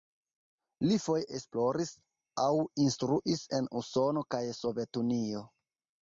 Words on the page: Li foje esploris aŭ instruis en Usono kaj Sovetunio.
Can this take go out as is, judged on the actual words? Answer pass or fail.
pass